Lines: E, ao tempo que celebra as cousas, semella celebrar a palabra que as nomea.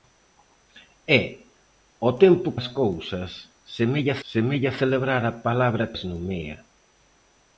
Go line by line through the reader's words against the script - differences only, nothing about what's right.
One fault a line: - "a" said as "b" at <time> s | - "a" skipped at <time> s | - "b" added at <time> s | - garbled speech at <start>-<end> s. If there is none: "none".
- "que celebra" skipped at 2.5 s
- "semella" added at 4.3 s
- "que" skipped at 5.9 s